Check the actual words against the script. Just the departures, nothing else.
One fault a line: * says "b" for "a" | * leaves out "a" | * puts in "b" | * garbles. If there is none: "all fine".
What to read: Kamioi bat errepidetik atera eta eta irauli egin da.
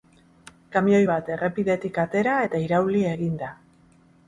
* leaves out "eta"